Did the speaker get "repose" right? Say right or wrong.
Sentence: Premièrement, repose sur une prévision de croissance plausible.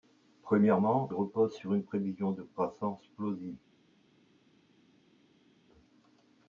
right